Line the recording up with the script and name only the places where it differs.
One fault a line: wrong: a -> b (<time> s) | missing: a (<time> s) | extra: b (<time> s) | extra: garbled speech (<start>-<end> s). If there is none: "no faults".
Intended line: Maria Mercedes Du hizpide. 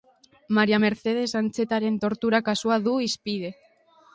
extra: Antxetaren tortura kasua (1.4 s)